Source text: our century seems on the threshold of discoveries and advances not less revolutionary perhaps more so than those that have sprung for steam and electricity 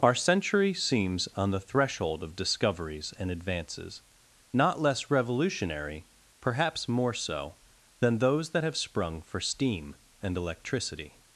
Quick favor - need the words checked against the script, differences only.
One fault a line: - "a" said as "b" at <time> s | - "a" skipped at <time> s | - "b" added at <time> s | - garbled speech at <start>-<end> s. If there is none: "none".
none